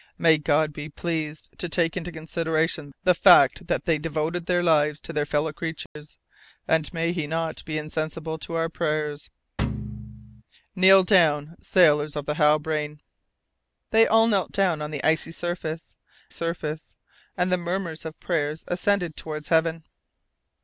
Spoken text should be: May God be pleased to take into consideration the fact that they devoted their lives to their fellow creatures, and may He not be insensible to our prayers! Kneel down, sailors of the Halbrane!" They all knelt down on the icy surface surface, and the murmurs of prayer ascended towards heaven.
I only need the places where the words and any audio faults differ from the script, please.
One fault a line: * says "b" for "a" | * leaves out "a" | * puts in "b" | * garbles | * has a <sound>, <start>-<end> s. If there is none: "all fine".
* has a dropout, 5.9-6.0 s
* has a thud, 9.6-10.4 s